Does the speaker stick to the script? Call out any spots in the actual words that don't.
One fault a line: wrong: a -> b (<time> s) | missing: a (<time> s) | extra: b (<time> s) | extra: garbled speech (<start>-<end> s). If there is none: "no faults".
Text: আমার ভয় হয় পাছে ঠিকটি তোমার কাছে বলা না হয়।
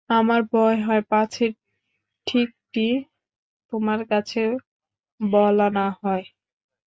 no faults